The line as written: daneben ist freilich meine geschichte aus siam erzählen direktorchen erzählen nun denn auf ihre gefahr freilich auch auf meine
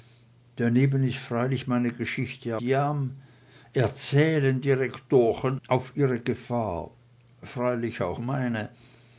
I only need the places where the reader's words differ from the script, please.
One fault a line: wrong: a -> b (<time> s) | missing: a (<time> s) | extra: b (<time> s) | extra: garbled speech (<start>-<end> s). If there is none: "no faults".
missing: aus (2.6 s)
missing: erzählen nun denn (5.6 s)
missing: auf (8.2 s)